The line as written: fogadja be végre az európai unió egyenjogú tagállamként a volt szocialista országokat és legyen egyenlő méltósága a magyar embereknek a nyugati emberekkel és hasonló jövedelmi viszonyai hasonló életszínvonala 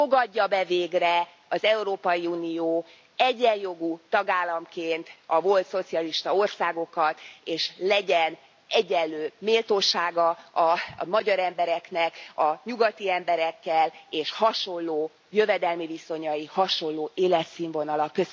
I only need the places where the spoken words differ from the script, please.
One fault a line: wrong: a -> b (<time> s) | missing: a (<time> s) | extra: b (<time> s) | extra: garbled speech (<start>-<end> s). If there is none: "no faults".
no faults